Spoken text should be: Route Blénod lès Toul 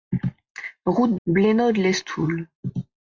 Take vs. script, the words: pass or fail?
pass